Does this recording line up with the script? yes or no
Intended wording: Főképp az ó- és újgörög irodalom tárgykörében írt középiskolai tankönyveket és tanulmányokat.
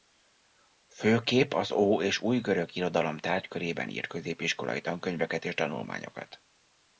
yes